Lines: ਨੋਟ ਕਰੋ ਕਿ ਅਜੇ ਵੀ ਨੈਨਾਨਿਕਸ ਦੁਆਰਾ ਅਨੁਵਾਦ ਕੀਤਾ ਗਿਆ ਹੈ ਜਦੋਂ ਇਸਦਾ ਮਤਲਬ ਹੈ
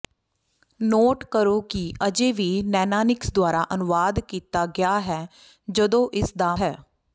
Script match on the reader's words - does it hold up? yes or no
no